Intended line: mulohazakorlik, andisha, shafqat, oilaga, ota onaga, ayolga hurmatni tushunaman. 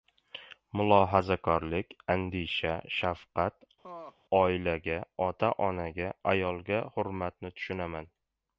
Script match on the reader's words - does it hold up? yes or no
yes